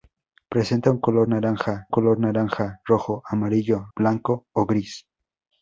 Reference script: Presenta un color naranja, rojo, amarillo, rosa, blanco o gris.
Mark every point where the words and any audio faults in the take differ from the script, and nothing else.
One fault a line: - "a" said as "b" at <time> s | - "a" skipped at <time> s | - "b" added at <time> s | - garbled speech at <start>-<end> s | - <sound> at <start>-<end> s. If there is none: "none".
- "color naranja" added at 1.9 s
- "rosa" skipped at 3.9 s